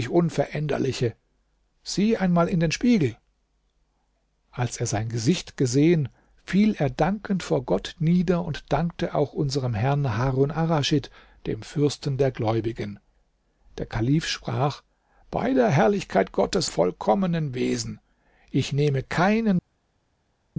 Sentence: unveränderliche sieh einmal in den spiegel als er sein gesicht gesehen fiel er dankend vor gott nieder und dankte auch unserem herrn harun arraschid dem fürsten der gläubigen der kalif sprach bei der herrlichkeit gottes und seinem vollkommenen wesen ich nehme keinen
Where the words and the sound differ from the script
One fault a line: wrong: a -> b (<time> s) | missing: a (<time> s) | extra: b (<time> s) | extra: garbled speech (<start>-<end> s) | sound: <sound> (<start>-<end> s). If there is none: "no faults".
missing: und seinem (16.7 s)